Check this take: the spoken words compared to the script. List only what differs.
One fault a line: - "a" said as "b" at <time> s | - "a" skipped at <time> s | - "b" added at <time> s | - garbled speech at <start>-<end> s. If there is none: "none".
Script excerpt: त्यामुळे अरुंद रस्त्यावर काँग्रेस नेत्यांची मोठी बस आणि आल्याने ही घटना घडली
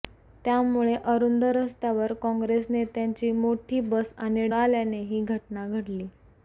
none